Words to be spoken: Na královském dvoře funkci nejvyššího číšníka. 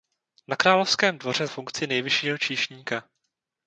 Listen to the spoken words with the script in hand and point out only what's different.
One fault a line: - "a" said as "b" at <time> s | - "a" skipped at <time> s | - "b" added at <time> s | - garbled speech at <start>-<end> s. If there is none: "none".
none